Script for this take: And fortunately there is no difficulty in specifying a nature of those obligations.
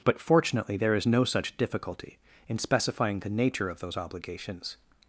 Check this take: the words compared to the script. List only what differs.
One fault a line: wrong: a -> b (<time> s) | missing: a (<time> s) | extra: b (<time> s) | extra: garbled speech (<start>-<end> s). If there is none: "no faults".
wrong: And -> But (0.0 s)
extra: such (1.2 s)
wrong: a -> the (3.2 s)